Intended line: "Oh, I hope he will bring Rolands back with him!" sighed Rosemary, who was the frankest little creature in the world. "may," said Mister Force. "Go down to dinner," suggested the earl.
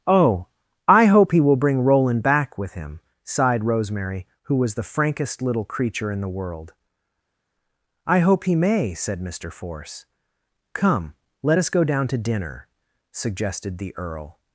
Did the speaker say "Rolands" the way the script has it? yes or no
no